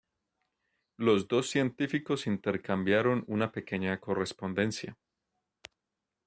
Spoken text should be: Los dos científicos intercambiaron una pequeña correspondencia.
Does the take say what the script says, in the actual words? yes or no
yes